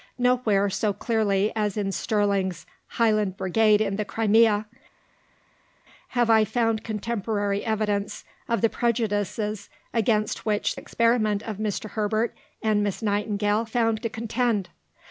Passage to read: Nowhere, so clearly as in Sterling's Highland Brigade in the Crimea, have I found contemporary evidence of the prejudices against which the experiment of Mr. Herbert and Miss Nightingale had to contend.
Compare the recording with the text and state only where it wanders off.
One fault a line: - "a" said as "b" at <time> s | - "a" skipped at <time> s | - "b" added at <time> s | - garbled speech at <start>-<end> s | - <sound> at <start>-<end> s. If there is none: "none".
- "the" skipped at 10.8 s
- "had" said as "found" at 13.6 s